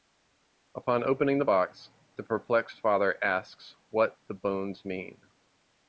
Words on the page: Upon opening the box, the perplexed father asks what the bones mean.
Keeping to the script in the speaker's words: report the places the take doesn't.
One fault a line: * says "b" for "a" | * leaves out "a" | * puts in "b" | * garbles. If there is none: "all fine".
all fine